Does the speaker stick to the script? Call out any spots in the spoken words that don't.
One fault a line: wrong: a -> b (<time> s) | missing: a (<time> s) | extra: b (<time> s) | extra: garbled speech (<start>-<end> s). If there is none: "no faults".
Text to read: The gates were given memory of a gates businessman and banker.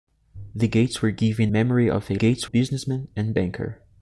no faults